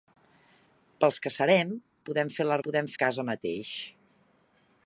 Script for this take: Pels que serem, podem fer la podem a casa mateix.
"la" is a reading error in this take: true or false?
false